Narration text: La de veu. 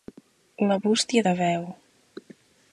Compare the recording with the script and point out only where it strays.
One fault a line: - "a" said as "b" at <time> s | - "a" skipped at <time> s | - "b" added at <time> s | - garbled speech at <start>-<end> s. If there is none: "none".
- "bústia" added at 0.8 s